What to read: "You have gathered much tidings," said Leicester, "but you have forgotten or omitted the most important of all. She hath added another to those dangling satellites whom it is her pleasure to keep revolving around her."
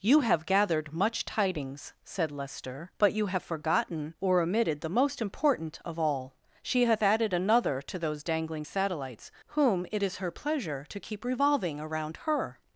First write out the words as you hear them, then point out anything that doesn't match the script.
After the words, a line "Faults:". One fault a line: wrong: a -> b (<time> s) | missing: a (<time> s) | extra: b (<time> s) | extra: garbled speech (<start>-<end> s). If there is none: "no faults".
"You have gathered much tidings," said Leicester, "but you have forgotten or omitted the most important of all. She hath added another to those dangling satellites whom it is her pleasure to keep revolving around her."
Faults:
no faults